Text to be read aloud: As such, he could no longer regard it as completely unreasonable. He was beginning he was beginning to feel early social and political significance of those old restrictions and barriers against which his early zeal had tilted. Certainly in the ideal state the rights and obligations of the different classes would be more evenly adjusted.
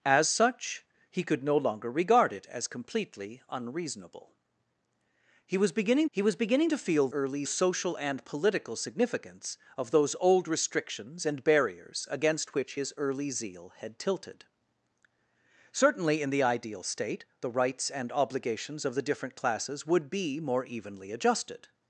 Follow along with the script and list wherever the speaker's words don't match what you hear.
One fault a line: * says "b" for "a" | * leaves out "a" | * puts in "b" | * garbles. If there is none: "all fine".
all fine